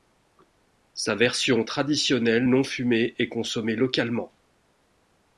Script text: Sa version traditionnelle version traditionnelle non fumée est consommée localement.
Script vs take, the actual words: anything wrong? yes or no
yes